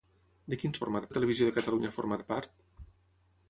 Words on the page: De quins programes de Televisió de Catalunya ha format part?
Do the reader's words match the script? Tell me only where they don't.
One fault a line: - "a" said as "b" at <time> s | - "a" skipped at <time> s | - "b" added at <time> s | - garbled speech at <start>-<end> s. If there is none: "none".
- "programes" said as "format" at 0.9 s